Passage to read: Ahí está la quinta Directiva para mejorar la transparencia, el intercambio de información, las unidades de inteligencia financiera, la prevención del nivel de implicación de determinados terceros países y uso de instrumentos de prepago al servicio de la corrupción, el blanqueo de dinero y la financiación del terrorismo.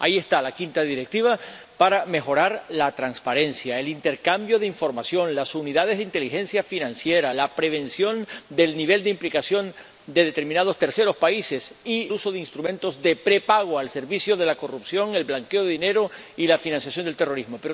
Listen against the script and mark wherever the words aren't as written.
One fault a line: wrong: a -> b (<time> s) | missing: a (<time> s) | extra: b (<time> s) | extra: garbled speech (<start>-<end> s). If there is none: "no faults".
no faults